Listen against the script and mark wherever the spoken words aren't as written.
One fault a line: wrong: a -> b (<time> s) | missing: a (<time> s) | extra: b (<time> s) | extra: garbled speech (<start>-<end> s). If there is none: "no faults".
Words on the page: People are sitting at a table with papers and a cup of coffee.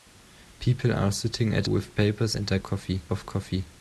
missing: a table (1.7 s)
wrong: cup -> coffee (2.6 s)